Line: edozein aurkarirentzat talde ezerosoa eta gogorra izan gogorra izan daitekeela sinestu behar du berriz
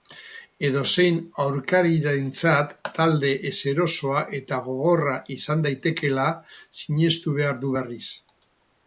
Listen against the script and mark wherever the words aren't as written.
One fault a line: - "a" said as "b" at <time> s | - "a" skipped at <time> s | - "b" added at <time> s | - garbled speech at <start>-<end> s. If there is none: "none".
- "gogorra izan" skipped at 5.6 s